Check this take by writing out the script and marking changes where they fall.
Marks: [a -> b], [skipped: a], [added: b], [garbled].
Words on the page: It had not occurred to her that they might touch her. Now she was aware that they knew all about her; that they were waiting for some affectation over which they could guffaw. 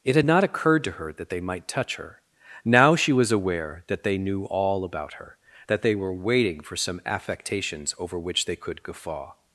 It had not occurred to her that they might touch her. Now she was aware that they knew all about her; that they were waiting for some [affectation -> affectations] over which they could guffaw.